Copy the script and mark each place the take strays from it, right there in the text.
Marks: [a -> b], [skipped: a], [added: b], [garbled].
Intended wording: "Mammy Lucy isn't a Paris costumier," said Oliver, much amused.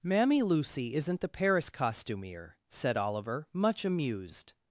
"Mammy Lucy isn't [a -> the] Paris costumier," said Oliver, much amused.